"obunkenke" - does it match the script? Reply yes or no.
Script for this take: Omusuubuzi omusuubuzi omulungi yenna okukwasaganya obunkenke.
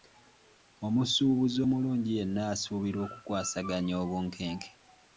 yes